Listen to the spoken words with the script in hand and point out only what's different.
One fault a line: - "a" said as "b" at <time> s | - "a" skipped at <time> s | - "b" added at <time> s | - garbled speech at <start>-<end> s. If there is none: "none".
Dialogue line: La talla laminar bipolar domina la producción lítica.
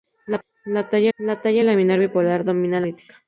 - "la talla" added at 1.2 s
- "la producción" skipped at 2.8 s